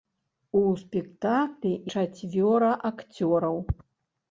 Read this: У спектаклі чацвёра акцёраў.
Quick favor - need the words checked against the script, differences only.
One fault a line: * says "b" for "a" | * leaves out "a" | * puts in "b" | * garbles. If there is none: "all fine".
all fine